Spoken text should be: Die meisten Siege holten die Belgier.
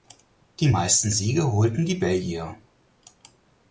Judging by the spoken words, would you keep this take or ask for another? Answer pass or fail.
pass